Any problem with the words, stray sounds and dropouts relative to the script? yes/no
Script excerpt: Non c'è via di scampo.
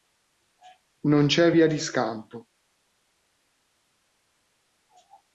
no